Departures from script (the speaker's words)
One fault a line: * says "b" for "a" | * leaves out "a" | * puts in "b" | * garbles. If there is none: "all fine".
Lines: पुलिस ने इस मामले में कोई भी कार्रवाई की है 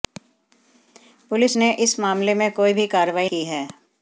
all fine